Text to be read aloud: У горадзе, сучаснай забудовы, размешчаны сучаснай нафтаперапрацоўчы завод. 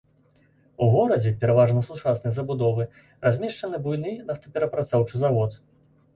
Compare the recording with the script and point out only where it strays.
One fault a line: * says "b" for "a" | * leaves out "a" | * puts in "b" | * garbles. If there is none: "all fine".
* puts in "пераважна"
* says "буйны" for "сучаснай"